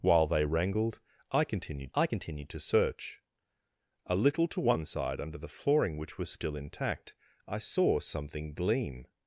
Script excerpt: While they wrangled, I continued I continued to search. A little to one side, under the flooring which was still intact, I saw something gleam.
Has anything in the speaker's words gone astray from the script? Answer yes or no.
no